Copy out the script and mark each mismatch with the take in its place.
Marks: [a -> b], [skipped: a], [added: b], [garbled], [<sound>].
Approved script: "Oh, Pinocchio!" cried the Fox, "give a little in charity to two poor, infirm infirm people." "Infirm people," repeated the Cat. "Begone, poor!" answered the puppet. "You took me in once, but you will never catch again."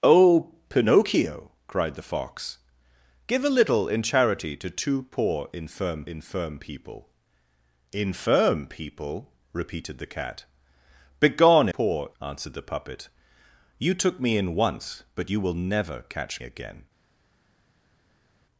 "Oh, Pinocchio!" cried the Fox, "give a little in charity to two poor, infirm infirm people." "Infirm people," repeated the Cat. "Begone, poor!" answered the puppet. "You took me in once, but you will never catch again."